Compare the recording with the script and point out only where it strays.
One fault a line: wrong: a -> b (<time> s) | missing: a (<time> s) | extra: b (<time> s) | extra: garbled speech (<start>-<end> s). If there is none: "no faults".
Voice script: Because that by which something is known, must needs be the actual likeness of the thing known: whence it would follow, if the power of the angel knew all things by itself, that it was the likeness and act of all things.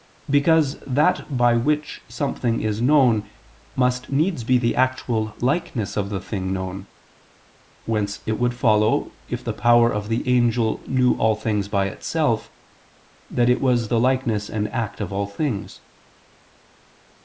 no faults